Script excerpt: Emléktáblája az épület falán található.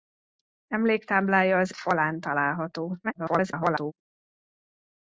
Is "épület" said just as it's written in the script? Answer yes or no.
no